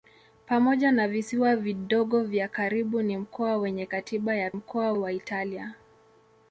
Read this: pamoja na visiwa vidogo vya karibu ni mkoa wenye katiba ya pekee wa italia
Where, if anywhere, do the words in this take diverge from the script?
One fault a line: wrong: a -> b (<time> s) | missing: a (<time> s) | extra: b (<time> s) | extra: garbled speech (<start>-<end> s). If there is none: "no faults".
wrong: pekee -> mkoa (4.5 s)